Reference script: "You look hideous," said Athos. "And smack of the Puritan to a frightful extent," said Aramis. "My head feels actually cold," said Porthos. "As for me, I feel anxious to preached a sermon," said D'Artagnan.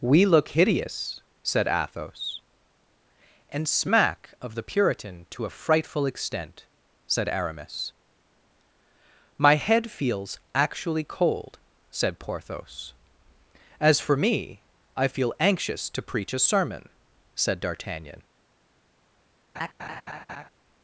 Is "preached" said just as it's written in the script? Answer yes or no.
no